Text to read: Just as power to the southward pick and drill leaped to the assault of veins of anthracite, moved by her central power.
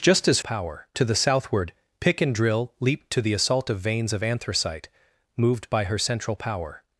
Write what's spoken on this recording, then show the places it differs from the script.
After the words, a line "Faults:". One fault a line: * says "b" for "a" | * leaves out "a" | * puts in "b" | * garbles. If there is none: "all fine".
Just as power to the southward pick and drill leaped to the assault of veins of anthracite, moved by her central power.
Faults:
all fine